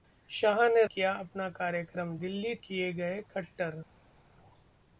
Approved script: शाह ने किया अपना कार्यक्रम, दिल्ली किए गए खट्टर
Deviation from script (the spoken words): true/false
false